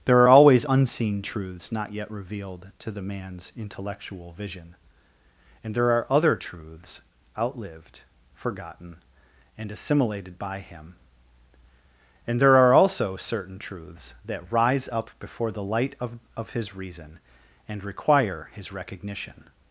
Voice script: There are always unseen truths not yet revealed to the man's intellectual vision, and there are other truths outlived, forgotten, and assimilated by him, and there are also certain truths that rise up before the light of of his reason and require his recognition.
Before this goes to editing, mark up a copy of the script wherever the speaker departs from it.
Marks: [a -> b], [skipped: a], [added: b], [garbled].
There are always unseen truths not yet revealed to the man's intellectual vision, and there are other truths outlived, forgotten, and assimilated by him, and there are also certain truths that rise up before the light of of his reason and require his recognition.